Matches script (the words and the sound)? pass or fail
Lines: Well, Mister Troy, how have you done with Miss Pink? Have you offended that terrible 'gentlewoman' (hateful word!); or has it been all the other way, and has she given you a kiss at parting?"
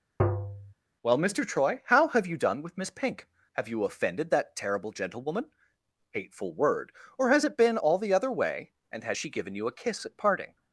fail